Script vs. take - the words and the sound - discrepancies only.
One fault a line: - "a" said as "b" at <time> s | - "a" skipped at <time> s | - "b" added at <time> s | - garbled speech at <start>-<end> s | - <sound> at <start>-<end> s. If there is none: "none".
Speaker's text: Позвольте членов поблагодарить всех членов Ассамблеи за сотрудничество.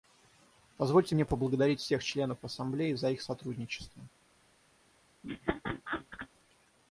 - "членов" said as "мне" at 1.1 s
- "их" added at 3.1 s
- laugh at 5.2-6.3 s